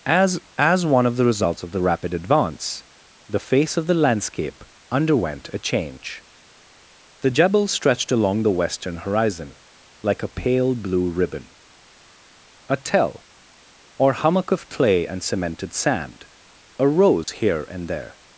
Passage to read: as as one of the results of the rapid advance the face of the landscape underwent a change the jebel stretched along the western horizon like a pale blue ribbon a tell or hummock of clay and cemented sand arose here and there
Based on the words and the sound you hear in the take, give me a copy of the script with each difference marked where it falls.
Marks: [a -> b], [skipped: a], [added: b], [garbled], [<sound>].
as as one of the results of the rapid advance the face of the landscape underwent a change the jebel stretched along the western horizon like a pale blue ribbon a tell or hummock of clay and cemented sand arose [dropout] here and there